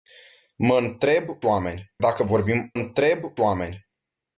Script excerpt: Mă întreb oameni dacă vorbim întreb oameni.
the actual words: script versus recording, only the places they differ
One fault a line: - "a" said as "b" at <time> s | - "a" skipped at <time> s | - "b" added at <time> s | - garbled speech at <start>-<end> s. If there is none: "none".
none